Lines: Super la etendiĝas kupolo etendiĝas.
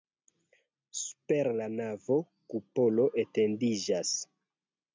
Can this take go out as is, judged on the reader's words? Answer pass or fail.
fail